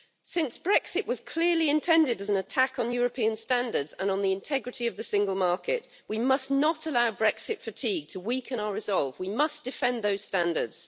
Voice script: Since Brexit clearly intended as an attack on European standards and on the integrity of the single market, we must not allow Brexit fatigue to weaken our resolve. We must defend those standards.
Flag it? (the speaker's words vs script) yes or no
yes